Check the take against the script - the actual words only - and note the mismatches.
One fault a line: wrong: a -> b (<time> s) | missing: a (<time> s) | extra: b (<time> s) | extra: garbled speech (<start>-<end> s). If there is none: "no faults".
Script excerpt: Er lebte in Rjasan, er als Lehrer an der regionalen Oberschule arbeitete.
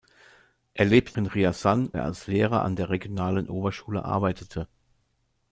no faults